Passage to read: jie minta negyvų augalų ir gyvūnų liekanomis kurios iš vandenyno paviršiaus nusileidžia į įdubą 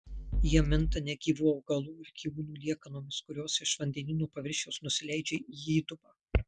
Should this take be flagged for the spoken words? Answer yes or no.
no